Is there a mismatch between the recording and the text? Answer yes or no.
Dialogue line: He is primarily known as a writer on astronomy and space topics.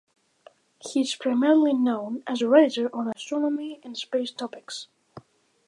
no